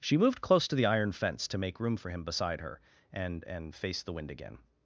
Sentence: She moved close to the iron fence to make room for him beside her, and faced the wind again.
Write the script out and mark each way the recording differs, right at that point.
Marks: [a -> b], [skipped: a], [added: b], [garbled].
She moved close to the iron fence to make room for him beside her, and [added: and] faced the wind again.